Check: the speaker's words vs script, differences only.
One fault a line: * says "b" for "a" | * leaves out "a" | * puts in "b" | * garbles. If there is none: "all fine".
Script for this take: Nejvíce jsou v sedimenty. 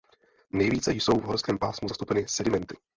* puts in "horském pásmu zastoupeny"